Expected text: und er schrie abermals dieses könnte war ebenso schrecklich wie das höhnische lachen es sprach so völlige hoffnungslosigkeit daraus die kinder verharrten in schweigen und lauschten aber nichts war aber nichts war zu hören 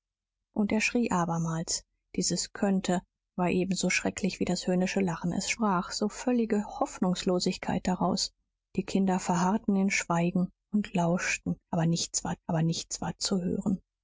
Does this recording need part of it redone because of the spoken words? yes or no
no